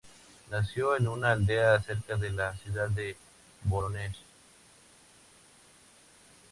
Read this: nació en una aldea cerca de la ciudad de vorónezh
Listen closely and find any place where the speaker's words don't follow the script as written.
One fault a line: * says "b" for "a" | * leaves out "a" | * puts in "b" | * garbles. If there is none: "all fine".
all fine